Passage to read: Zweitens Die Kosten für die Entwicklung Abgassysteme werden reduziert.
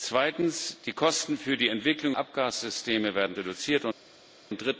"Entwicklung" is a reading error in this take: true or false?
false